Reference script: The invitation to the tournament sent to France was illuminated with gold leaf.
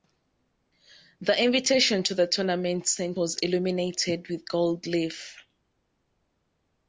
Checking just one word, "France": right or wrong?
wrong